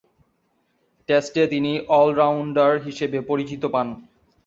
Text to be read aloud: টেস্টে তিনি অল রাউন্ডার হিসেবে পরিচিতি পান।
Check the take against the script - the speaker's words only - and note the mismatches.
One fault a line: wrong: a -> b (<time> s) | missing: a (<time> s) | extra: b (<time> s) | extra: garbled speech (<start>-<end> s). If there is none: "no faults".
no faults